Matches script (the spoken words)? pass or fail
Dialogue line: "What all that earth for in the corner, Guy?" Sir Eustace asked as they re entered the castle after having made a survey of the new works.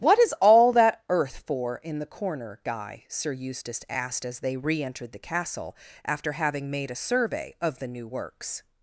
fail